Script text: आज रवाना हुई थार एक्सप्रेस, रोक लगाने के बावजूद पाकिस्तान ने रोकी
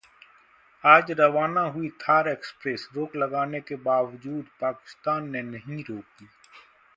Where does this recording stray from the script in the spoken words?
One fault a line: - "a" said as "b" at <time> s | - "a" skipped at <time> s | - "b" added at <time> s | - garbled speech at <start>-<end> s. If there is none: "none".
- "नहीं" added at 5.4 s